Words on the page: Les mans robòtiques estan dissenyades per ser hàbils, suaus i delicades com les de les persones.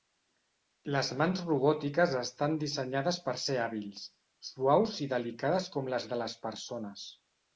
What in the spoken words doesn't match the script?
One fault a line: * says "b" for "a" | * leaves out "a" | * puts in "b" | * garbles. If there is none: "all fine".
all fine